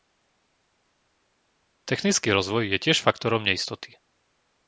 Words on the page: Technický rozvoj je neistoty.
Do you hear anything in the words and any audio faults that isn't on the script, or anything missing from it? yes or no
yes